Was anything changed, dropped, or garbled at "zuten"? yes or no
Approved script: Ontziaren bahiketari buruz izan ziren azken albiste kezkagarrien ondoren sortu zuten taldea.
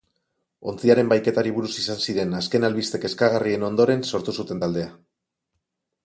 no